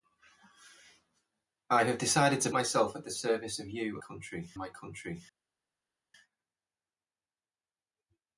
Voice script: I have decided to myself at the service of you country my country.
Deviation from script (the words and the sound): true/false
false